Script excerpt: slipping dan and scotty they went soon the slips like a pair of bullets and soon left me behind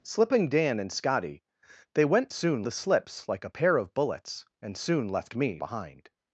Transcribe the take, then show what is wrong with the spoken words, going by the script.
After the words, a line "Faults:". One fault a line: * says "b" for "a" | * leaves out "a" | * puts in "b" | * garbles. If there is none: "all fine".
slipping dan and scotty they went soon the slips like a pair of bullets and soon left me behind
Faults:
all fine